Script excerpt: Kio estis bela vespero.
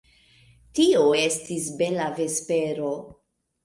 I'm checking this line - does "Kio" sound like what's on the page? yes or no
no